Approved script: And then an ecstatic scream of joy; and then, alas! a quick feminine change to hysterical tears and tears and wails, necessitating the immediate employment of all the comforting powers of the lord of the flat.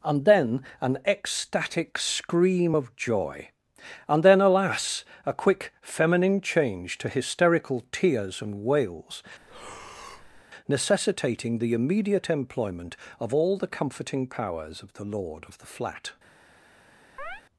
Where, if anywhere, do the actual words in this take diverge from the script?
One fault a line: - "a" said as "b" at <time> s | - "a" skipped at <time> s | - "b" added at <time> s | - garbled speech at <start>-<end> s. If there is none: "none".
- "tears and" skipped at 8.6 s